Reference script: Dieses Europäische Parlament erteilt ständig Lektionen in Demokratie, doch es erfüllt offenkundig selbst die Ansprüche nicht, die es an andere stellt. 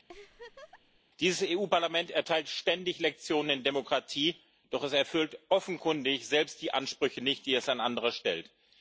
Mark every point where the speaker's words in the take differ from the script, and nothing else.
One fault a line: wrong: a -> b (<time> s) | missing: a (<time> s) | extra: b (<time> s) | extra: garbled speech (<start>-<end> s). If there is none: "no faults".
no faults